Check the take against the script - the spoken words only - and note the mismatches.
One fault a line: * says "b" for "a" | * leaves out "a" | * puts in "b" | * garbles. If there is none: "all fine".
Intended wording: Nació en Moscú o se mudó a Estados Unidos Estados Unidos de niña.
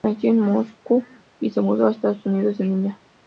* says "y" for "o"
* leaves out "Estados Unidos"